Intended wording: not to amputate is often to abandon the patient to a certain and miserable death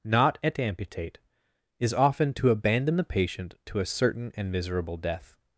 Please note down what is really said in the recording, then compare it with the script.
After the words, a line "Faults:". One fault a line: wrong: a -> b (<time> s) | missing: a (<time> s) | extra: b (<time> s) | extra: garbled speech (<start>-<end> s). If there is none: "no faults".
not at amputate is often to abandon the patient to a certain and miserable death
Faults:
wrong: to -> at (0.4 s)